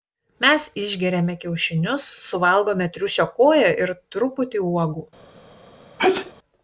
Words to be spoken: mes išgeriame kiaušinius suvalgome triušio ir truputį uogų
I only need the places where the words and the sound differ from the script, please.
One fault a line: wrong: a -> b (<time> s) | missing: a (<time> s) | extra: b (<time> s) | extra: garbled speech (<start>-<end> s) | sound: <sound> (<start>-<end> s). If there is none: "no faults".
extra: koją (3.4 s)
sound: sneeze (6.0-6.3 s)